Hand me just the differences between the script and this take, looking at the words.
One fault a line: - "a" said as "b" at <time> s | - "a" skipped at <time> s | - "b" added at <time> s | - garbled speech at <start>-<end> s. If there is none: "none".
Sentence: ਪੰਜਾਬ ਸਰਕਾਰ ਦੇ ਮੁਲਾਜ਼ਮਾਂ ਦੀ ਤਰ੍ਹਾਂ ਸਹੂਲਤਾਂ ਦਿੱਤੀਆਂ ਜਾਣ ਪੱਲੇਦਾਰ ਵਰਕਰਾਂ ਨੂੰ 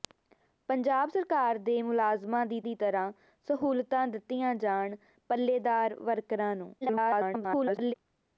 - "ਦੀ" added at 2.6 s
- garbled speech at 6.8-7.9 s